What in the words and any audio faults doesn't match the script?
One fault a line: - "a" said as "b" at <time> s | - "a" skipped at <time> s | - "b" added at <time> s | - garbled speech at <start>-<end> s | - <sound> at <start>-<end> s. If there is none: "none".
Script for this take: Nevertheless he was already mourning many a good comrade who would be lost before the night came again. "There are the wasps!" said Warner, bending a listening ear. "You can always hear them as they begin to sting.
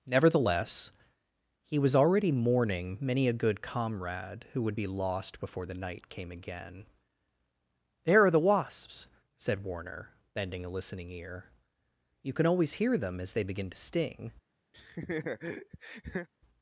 - laugh at 14.7-16.3 s